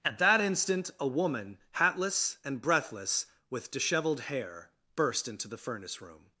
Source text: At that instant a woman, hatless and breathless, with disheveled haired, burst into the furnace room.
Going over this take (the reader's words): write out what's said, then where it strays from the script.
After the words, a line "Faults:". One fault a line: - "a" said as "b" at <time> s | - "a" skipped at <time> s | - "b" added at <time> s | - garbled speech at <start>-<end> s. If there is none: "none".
At that instant a woman, hatless and breathless, with disheveled hair, burst into the furnace room.
Faults:
- "haired" said as "hair" at 4.2 s